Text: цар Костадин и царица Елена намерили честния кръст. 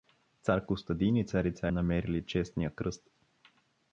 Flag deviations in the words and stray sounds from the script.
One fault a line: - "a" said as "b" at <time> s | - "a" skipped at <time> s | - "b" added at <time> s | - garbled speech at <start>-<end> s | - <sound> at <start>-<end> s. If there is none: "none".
- "Елена" skipped at 1.7 s